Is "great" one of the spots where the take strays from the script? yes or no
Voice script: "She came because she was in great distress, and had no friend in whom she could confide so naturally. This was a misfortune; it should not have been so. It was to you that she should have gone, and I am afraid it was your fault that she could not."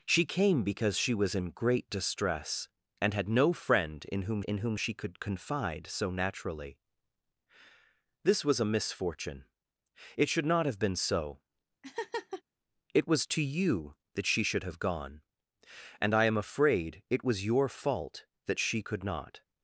no